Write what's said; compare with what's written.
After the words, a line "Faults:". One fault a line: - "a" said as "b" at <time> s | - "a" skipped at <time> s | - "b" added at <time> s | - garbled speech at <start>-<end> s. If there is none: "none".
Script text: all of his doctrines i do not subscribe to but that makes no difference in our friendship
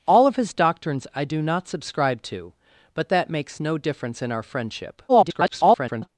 all of his doctrines i do not subscribe to but that makes no difference in our friendship [garbled]
Faults:
- garbled speech at 5.1-6.1 s